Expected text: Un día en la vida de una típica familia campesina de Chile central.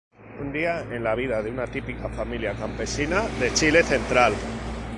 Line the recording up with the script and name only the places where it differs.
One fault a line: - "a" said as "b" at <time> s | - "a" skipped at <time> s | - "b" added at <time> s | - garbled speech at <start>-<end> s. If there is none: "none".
none